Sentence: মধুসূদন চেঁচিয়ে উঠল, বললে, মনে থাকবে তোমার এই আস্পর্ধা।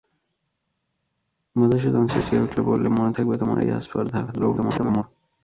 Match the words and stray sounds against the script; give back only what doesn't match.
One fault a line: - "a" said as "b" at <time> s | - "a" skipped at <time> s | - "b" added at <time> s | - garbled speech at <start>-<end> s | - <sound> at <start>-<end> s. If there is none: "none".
- garbled speech at 4.3-5.0 s